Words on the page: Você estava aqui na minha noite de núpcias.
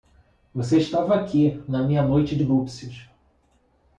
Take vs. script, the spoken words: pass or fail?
fail